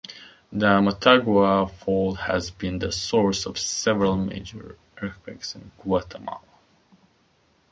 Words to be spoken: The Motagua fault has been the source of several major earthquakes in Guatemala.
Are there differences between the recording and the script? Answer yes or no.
no